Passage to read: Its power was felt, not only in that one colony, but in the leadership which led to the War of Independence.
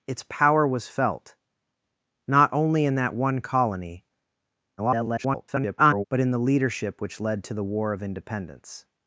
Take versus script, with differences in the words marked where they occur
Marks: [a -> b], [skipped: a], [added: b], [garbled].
Its power was felt, not only in that one colony, [garbled] but in the leadership which led to the War of Independence.